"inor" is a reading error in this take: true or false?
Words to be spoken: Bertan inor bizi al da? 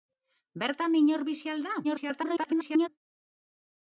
false